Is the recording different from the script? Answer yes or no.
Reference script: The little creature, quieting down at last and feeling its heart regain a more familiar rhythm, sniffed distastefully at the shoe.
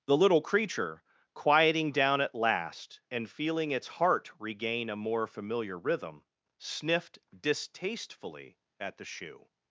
no